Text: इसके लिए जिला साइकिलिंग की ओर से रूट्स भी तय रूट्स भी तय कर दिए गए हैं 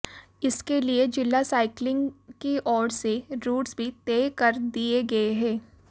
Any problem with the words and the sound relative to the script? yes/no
yes